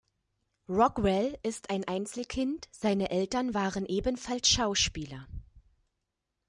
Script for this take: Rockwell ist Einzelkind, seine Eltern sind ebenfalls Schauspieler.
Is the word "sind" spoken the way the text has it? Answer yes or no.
no